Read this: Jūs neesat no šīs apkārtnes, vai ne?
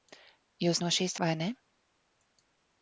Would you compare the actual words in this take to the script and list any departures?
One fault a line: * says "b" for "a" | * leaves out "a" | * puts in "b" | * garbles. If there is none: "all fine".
* leaves out "neesat"
* leaves out "apkārtnes"